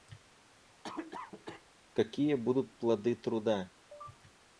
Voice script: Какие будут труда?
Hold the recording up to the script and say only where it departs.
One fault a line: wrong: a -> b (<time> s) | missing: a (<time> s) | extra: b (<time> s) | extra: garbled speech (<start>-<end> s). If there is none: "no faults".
extra: плоды (2.8 s)